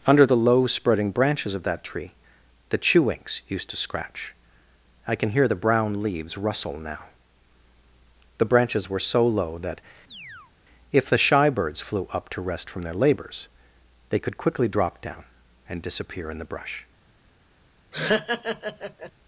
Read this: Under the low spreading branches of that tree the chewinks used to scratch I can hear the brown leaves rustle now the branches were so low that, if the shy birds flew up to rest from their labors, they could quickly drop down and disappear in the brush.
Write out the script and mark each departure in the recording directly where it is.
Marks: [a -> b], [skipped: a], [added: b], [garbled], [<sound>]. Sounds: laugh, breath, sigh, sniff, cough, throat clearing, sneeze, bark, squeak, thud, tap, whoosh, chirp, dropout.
Under the low spreading branches of that tree the chewinks used to scratch I can hear the brown leaves rustle now the branches were so low that, [chirp] if the shy birds flew up to rest from their labors, they could quickly drop down and disappear in the brush. [laugh]